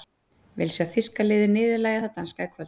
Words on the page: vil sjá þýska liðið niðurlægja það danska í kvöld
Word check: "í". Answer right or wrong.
right